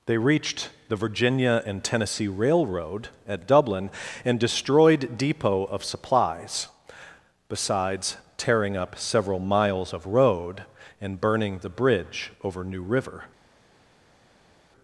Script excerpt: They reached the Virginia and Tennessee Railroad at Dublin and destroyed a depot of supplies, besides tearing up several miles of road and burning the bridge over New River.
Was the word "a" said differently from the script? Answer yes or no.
yes